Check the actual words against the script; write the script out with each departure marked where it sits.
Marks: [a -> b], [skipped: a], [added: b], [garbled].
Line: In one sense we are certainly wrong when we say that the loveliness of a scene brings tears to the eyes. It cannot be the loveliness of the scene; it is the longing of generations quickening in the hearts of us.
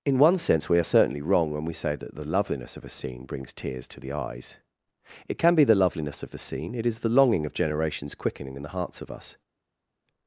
In one sense we are certainly wrong when we say that the loveliness of a scene brings tears to the eyes. It [cannot -> can] be the loveliness of the scene; it is the longing of generations quickening in the hearts of us.